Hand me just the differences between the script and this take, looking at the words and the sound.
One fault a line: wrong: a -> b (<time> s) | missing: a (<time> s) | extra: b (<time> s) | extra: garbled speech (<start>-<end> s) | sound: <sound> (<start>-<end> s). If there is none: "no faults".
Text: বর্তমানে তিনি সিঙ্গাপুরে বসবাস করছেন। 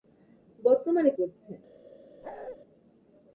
missing: তিনি সিঙ্গাপুরে বসবাস (1.1 s)
sound: bark (2.2-2.6 s)